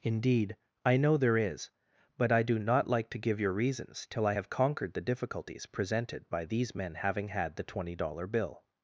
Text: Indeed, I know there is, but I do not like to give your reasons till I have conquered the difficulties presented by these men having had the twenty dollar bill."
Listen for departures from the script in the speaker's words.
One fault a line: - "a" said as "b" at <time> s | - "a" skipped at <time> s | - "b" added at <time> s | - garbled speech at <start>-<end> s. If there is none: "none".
none